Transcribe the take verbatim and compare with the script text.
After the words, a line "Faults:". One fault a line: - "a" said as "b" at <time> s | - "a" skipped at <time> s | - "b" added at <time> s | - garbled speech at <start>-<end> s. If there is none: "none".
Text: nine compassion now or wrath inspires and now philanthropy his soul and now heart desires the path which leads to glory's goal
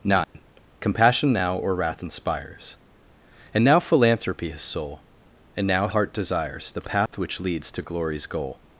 nine compassion now or wrath inspires and now philanthropy his soul and now heart desires the path which leads to glory's goal
Faults:
none